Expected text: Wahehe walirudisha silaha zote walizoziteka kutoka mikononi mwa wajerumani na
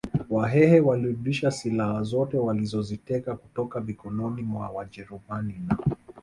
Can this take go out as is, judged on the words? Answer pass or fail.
pass